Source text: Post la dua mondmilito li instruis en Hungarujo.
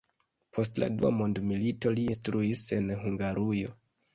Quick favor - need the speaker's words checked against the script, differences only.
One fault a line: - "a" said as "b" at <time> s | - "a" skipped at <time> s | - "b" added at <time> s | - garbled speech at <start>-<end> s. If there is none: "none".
none